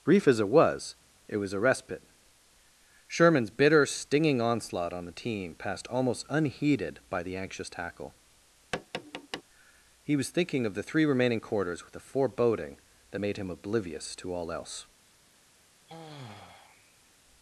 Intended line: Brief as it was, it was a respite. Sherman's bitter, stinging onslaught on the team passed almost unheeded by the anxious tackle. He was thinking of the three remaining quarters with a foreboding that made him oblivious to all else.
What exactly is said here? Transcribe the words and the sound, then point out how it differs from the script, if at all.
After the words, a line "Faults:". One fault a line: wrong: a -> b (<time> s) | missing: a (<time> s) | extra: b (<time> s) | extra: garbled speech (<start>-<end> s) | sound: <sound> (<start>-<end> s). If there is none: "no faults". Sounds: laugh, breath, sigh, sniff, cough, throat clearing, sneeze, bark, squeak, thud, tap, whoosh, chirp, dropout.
Brief as it was, it was a respite. Sherman's bitter, stinging onslaught on the team passed almost unheeded by the anxious tackle. He was thinking of the three remaining quarters with a foreboding that made him oblivious to all else.
Faults:
sound: tap (8.7-9.4 s)
sound: sigh (15.9-17.1 s)